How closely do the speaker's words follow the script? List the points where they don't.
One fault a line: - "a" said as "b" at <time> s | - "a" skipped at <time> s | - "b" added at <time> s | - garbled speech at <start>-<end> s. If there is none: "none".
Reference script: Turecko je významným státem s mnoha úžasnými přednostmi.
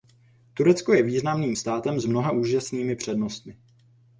none